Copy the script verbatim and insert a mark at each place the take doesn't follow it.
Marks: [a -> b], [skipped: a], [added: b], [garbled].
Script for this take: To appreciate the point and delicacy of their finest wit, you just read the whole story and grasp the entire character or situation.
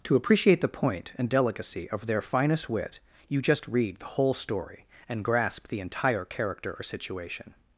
To appreciate the point and delicacy of their finest wit, you just read the whole story and grasp the entire character or situation.